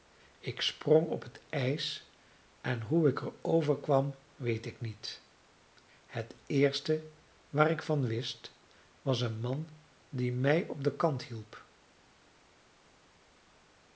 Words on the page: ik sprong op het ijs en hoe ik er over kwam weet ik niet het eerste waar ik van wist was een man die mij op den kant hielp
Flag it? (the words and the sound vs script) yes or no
no